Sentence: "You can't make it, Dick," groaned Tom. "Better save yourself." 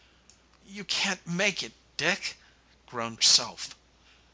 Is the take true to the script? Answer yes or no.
no